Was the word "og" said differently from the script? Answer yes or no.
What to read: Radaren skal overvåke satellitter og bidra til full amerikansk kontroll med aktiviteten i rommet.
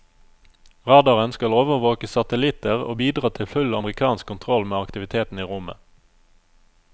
no